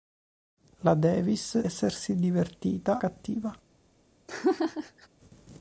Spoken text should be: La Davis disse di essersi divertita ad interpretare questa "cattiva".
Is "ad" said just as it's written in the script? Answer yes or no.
no